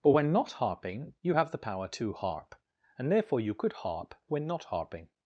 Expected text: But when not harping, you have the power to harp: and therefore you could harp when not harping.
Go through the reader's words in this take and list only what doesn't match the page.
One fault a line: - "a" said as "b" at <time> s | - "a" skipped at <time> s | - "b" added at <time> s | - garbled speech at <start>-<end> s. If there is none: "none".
none